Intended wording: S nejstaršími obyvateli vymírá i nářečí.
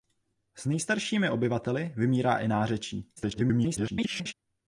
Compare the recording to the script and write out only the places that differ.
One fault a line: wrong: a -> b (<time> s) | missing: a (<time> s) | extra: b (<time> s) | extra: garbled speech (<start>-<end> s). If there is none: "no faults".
extra: garbled speech (3.2-4.3 s)